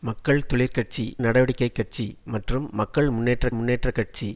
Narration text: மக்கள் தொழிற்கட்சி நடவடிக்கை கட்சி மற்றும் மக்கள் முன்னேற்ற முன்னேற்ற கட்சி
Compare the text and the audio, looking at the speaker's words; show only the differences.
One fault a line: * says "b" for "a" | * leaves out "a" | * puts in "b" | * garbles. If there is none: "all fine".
all fine